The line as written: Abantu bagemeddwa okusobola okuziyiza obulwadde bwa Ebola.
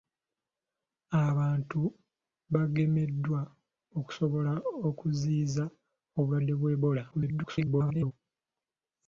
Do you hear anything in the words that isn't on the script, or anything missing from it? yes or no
yes